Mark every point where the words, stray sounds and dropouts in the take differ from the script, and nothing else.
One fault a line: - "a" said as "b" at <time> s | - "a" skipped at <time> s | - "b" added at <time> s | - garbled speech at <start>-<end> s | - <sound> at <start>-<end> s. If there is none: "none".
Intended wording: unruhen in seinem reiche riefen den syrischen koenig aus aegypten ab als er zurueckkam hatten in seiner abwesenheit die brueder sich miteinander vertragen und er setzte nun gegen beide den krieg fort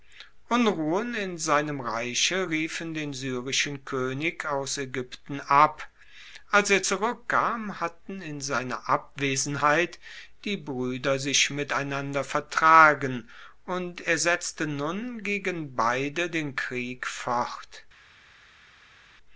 none